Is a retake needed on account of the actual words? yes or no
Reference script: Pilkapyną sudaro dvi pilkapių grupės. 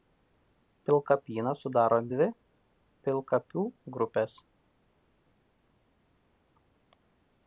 no